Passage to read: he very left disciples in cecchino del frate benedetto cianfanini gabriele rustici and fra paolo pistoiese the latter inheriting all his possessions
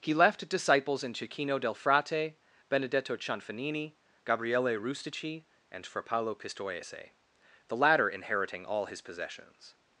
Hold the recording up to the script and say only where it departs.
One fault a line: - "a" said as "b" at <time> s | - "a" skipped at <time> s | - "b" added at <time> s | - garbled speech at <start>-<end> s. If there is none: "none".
- "very" skipped at 0.1 s